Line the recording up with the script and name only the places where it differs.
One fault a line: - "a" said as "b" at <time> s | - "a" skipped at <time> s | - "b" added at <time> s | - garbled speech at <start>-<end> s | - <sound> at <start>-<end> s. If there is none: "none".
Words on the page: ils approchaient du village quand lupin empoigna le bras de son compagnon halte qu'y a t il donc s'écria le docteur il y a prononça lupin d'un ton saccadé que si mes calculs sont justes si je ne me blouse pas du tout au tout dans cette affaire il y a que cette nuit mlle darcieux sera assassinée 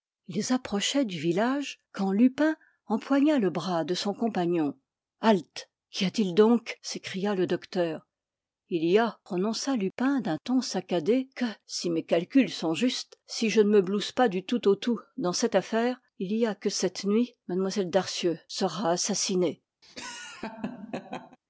- laugh at 19.8-21.4 s